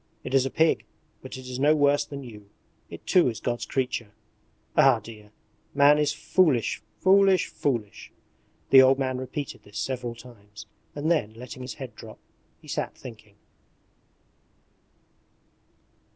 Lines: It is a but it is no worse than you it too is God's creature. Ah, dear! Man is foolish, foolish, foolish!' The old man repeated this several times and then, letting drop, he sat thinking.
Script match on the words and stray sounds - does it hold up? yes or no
no